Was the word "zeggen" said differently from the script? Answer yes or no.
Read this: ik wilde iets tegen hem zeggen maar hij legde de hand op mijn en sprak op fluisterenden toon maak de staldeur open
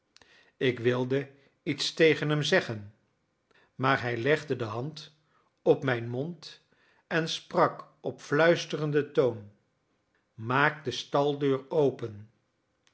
no